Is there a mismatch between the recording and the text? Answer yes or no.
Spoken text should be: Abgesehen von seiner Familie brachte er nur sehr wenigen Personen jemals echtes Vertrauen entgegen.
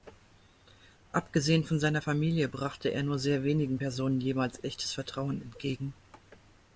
no